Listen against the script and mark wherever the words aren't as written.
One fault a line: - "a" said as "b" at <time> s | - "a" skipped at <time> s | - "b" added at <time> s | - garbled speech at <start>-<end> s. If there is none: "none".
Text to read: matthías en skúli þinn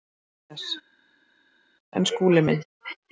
- "þinn" said as "minn" at 2.5 s